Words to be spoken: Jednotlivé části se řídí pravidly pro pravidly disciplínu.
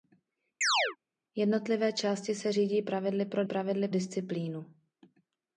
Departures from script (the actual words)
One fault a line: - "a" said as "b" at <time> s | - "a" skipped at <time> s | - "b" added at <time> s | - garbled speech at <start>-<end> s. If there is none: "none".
none